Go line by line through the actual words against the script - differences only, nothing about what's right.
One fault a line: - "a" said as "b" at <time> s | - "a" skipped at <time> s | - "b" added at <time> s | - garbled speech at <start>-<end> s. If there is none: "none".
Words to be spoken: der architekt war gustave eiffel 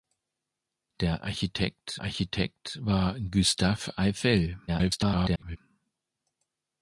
- "architekt" added at 2.0 s
- garbled speech at 4.7-5.6 s